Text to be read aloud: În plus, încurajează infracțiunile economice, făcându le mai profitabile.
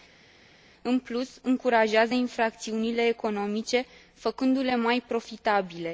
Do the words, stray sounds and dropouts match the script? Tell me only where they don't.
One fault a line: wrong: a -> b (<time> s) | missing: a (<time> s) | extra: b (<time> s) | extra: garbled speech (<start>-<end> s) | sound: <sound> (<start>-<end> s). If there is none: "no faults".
no faults